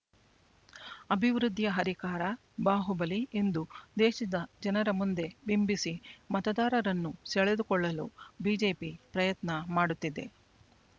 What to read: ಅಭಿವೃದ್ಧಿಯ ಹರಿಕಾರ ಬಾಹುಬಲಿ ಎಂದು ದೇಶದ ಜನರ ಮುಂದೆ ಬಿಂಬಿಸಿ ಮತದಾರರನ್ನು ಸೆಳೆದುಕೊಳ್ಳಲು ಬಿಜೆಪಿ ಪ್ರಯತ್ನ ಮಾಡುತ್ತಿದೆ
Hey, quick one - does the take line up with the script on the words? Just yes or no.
yes